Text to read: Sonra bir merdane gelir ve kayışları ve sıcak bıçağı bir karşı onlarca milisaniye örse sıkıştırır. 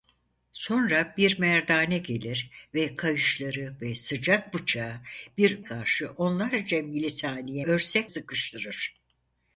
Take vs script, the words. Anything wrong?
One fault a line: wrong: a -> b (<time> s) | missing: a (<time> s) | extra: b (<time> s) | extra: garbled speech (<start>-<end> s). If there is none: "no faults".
no faults